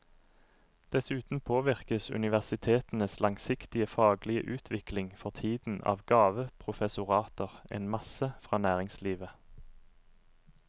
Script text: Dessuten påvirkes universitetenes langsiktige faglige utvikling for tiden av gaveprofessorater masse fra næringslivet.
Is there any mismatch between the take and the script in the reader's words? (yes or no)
yes